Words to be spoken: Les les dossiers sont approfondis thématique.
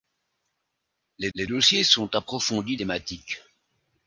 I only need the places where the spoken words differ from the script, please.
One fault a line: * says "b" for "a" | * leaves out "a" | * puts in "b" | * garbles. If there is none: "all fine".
all fine